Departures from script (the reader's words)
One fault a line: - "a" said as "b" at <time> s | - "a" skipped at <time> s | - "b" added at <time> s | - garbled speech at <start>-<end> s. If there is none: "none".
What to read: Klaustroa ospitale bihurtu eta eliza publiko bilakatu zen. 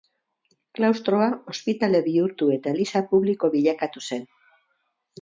none